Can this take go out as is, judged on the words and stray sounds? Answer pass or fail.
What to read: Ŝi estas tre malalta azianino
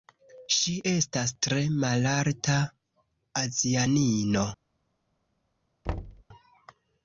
fail